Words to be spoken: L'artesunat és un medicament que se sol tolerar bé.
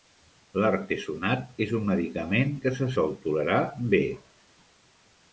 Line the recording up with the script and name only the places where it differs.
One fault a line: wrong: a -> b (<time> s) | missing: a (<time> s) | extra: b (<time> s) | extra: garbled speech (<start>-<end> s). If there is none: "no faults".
no faults